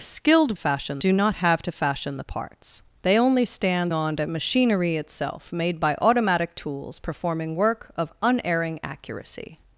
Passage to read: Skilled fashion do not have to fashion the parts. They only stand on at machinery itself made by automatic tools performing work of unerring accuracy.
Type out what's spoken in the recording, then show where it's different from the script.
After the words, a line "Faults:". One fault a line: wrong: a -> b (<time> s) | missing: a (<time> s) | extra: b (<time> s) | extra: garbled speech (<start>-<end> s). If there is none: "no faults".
Skilled fashion do not have to fashion the parts. They only stand on at machinery itself made by automatic tools performing work of unerring accuracy.
Faults:
no faults